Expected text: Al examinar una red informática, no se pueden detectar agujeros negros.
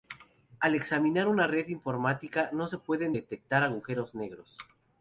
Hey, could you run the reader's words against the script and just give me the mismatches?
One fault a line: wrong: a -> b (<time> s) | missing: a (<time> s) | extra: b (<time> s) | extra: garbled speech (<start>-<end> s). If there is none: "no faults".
no faults